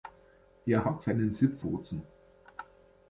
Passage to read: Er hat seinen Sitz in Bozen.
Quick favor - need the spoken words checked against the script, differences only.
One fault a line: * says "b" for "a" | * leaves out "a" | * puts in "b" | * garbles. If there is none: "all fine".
* leaves out "in"